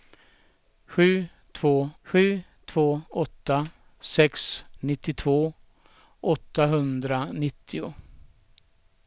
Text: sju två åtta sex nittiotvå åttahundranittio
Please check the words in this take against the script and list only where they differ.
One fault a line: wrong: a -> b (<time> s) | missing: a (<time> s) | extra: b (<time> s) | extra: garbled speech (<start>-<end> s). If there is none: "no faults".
extra: sju två (2.0 s)